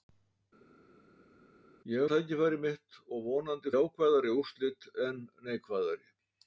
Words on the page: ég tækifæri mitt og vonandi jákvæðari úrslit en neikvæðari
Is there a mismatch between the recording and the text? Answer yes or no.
no